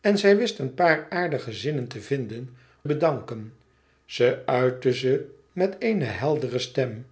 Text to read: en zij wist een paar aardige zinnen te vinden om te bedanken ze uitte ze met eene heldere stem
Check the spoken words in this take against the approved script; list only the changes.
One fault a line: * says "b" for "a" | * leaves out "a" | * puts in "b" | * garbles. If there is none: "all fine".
* leaves out "om te"